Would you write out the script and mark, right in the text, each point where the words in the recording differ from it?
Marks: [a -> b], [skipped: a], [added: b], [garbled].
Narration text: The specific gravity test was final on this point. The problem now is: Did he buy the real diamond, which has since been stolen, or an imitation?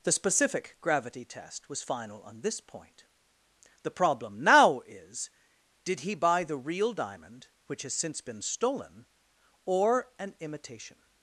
The specific gravity test was final on this point. The problem now is: Did he buy the real diamond, which has since been stolen, or an imitation?